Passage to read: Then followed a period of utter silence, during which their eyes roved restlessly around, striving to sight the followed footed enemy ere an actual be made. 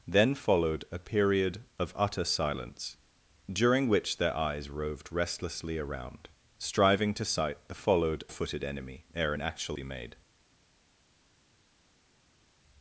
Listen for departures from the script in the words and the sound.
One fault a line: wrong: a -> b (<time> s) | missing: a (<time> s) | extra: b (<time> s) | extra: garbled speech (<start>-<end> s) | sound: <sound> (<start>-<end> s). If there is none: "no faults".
no faults